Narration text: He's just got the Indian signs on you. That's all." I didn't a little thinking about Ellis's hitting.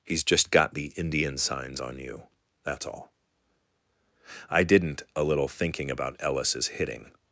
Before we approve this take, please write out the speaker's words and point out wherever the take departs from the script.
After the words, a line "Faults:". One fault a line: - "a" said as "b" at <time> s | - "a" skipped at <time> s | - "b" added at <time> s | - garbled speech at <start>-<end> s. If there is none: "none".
He's just got the Indian signs on you. That's all." I didn't a little thinking about Ellis's hitting.
Faults:
none